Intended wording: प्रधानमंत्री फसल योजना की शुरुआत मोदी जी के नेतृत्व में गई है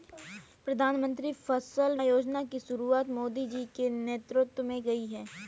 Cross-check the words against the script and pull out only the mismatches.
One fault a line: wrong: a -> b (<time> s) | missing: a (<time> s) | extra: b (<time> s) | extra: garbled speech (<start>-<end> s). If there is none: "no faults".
no faults